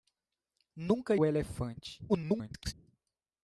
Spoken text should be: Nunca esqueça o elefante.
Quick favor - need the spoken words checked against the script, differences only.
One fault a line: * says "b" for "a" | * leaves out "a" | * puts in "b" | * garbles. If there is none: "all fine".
* leaves out "esqueça"
* garbles